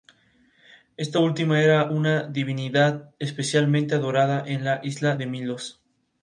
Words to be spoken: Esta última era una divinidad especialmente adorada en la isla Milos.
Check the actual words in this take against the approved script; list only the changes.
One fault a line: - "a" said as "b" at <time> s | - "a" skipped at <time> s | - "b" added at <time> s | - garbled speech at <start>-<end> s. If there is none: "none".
- "de" added at 5.1 s